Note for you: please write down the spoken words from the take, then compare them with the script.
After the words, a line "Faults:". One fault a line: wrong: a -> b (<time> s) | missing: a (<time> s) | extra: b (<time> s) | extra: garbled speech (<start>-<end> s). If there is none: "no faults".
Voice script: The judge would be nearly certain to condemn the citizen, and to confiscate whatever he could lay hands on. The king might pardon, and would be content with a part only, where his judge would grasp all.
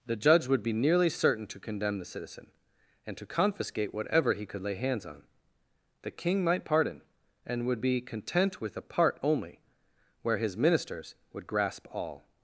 The judge would be nearly certain to condemn the citizen, and to confiscate whatever he could lay hands on. The king might pardon, and would be content with a part only, where his ministers would grasp all.
Faults:
wrong: judge -> ministers (10.6 s)